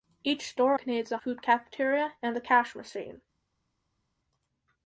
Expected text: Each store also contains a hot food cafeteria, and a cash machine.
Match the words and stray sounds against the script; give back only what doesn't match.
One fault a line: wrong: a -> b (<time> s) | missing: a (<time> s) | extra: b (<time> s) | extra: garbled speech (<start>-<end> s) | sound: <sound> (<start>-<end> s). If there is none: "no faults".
missing: also (0.8 s)
missing: hot (1.2 s)